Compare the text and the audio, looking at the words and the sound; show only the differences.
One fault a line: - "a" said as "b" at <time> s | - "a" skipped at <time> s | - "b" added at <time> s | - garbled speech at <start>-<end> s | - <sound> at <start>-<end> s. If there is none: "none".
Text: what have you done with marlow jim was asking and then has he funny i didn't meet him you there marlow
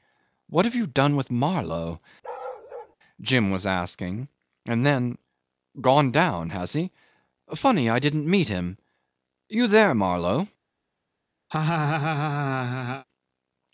- bark at 2.2-3.0 s
- "gone down" added at 5.8 s
- laugh at 11.5-13.1 s